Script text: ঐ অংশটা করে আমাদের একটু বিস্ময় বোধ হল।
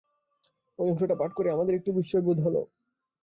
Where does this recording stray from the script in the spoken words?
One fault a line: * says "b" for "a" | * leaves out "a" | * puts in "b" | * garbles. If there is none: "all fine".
* puts in "পাঠ"